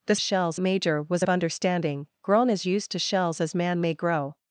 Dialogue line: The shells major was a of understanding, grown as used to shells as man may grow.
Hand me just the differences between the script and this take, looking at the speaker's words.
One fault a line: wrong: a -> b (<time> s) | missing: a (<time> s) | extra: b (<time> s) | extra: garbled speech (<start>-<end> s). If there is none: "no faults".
no faults